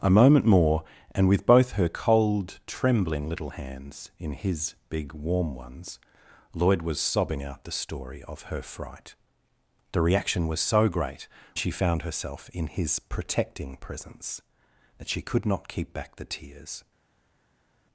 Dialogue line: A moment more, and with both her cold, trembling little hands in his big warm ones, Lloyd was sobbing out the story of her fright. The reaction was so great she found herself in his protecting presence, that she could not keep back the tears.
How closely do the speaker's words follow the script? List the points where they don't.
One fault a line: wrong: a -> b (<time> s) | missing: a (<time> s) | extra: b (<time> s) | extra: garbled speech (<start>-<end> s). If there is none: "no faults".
no faults